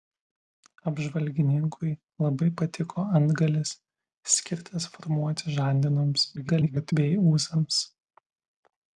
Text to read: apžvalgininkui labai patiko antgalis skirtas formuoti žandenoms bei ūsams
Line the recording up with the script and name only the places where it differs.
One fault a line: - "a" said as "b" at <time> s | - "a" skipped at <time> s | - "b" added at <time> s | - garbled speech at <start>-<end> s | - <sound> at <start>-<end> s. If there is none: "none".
- garbled speech at 6.4-6.9 s